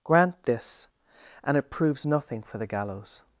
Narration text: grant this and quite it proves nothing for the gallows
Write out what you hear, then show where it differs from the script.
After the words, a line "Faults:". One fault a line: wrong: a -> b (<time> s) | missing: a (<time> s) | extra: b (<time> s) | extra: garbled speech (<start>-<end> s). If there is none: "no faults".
grant this and it proves nothing for the gallows
Faults:
missing: quite (1.6 s)